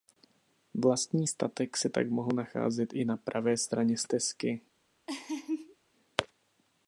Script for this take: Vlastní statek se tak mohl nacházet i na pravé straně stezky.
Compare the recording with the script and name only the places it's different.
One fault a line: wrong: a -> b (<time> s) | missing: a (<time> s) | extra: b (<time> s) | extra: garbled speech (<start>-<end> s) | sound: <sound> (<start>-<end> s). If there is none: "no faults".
sound: laugh (5.1-5.8 s)